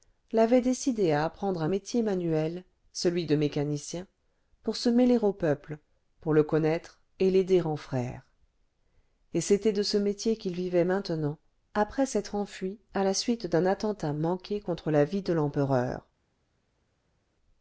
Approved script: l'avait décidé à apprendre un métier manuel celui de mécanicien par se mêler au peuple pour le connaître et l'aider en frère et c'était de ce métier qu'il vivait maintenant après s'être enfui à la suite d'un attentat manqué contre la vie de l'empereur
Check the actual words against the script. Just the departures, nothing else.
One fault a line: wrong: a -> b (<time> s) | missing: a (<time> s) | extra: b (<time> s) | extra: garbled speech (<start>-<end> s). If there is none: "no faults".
wrong: par -> pour (4.6 s)